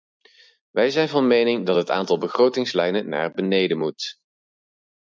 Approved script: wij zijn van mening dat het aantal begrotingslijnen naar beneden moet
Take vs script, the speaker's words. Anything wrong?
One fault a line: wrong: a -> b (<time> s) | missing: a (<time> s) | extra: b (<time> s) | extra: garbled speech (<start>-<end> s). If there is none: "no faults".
no faults